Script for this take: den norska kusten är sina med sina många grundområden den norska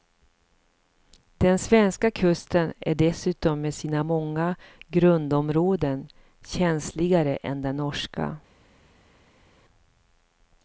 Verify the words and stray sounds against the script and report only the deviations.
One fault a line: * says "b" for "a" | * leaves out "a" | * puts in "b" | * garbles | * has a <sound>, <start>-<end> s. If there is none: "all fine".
* says "svenska" for "norska"
* says "dessutom" for "sina"
* puts in "känsligare än"